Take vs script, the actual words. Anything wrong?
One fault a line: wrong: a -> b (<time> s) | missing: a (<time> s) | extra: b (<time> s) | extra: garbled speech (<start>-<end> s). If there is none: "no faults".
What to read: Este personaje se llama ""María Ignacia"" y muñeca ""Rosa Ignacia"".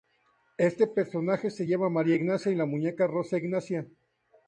extra: la (2.6 s)